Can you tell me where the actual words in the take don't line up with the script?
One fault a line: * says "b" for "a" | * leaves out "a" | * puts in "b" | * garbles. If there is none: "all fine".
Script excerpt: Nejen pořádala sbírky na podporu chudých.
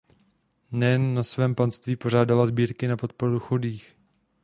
* puts in "na svém panství"